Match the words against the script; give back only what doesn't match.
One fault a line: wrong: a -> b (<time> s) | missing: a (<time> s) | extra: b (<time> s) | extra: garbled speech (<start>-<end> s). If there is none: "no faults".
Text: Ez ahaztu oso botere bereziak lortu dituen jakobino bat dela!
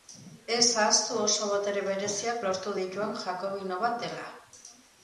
no faults